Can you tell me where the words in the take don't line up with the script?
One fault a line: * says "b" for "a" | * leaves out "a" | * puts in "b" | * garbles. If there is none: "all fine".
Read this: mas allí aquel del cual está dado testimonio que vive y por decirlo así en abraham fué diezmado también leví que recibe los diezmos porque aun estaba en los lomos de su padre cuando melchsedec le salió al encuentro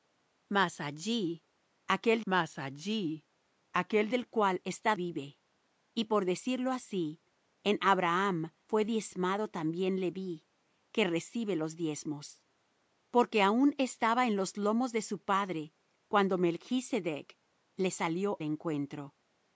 * puts in "mas allí aquel"
* leaves out "dado testimonio que"
* leaves out "al"